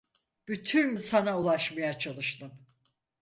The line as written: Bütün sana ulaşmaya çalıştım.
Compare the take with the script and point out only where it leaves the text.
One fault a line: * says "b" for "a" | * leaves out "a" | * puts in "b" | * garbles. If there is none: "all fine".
all fine